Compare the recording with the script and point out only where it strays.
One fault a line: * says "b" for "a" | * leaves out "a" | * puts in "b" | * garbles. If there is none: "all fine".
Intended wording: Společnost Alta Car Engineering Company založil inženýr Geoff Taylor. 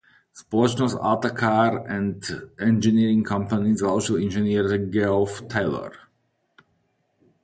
* puts in "and"